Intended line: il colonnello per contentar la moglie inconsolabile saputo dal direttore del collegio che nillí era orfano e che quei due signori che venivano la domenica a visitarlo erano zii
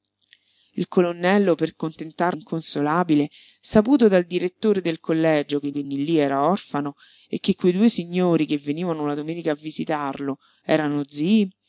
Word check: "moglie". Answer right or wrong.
wrong